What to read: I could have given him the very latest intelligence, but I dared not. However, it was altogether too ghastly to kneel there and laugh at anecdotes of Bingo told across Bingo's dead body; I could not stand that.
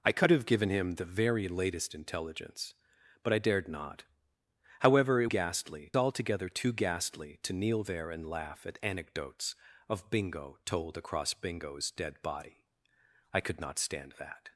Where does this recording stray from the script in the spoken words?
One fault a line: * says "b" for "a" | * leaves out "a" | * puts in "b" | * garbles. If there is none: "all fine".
* says "ghastly" for "was"